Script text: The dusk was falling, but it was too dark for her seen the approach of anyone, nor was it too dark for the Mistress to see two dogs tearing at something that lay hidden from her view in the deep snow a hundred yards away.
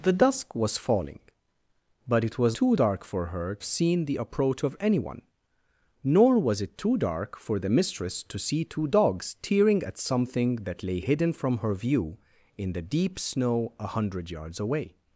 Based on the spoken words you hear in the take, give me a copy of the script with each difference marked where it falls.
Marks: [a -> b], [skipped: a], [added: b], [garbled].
The dusk was falling, but it was too dark for her seen the approach of anyone, nor was it too dark for the Mistress to see two dogs tearing at something that lay hidden from her view in the deep snow a hundred yards away.